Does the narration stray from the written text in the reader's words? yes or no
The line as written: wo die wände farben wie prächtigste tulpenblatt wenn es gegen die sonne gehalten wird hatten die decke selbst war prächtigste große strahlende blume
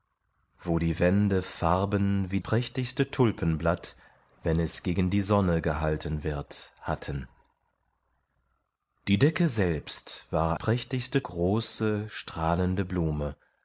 no